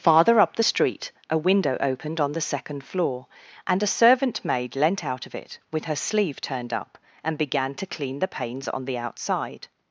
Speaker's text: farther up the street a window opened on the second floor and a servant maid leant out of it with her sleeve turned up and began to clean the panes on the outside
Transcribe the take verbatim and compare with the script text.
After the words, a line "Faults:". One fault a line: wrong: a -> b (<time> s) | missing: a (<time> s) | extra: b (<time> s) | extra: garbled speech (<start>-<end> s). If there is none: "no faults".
farther up the street a window opened on the second floor and a servant maid leant out of it with her sleeve turned up and began to clean the panes on the outside
Faults:
no faults